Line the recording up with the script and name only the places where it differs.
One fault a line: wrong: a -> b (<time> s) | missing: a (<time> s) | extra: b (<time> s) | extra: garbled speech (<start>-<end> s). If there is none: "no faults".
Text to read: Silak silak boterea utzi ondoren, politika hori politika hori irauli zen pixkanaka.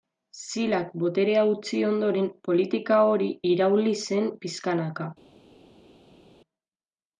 missing: silak (0.9 s)
missing: politika hori (3.3 s)